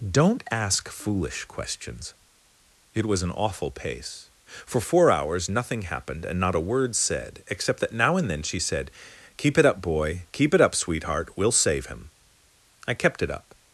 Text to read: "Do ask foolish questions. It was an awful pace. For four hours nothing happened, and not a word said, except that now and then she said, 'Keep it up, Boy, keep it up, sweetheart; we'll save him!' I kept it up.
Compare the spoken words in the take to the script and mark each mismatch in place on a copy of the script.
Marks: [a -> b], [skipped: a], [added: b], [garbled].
["Do -> Don't] ask foolish questions. It was an awful pace. For four hours nothing happened, and not a word said, except that now and then she said, 'Keep it up, Boy, keep it up, sweetheart; we'll save him!' I kept it up.